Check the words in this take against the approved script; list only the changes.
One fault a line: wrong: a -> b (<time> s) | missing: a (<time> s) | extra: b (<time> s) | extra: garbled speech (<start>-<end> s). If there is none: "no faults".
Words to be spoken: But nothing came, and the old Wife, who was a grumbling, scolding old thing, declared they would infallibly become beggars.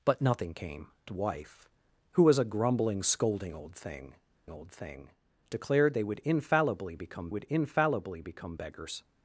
missing: and the old (0.9 s)
extra: old thing (4.5 s)
extra: would infallibly become (7.3 s)